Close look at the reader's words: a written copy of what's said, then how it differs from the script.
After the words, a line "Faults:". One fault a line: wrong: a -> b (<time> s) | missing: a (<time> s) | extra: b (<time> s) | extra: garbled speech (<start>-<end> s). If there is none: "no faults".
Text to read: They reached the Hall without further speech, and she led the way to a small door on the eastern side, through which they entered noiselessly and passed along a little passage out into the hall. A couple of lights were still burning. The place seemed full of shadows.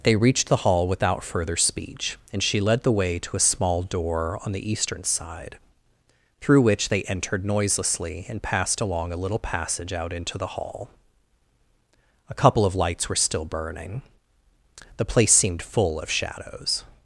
They reached the Hall without further speech, and she led the way to a small door on the eastern side, through which they entered noiselessly and passed along a little passage out into the hall. A couple of lights were still burning. The place seemed full of shadows.
Faults:
no faults